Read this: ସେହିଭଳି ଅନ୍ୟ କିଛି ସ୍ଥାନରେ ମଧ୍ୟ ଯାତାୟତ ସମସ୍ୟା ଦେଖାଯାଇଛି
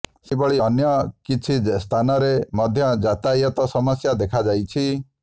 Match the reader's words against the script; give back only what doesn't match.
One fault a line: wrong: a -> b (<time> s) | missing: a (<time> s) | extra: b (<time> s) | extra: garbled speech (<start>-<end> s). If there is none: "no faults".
no faults